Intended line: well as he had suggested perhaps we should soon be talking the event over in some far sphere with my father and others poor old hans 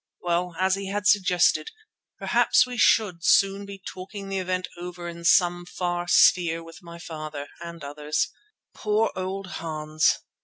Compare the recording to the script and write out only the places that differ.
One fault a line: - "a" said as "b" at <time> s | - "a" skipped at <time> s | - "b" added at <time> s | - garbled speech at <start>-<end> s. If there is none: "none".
none